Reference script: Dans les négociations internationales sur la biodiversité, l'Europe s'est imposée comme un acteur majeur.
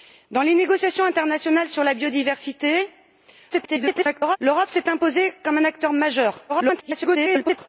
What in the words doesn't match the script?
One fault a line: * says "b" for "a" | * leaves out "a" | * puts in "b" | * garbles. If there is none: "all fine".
* garbles
* garbles